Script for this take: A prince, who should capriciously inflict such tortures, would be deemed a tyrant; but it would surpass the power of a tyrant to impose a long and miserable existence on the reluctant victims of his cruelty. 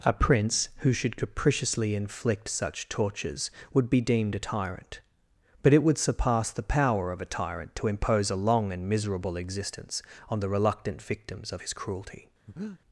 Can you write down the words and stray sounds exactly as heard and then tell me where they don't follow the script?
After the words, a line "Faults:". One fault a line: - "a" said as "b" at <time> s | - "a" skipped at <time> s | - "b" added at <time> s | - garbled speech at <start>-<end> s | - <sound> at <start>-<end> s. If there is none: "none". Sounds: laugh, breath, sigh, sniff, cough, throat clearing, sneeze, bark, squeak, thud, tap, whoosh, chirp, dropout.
A prince, who should capriciously inflict such tortures, would be deemed a tyrant; but it would surpass the power of a tyrant to impose a long and miserable existence on the reluctant victims of his cruelty.
Faults:
- breath at 12.5-12.8 s